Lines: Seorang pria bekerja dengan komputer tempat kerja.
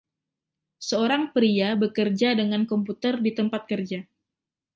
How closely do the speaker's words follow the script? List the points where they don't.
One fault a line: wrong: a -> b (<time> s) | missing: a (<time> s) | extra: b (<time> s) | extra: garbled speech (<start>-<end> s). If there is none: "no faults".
extra: di (3.2 s)